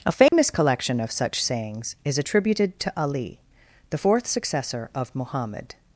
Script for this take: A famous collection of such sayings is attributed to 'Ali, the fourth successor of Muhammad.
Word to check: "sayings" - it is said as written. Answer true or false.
true